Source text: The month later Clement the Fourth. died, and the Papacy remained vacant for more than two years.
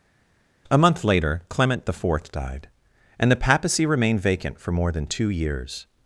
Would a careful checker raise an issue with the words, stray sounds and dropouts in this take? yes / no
yes